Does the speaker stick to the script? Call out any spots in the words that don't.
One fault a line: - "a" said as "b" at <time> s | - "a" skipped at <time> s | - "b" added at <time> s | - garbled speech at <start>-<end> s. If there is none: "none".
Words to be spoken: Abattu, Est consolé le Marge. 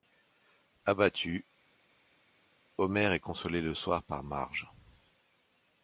- "Homer" added at 2.8 s
- "soir par" added at 3.7 s